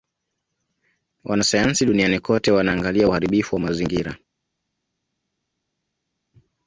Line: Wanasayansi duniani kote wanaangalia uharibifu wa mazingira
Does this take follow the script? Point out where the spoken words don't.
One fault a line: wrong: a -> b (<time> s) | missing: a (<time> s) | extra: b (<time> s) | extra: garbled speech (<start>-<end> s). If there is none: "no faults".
no faults